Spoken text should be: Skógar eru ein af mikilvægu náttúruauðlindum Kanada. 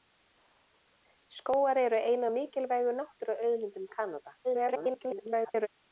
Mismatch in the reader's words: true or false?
true